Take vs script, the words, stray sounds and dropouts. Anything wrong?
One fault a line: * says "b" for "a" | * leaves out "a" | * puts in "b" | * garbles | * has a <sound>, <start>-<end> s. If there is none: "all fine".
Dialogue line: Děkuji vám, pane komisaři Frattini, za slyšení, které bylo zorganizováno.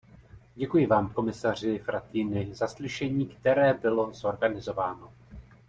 * leaves out "pane"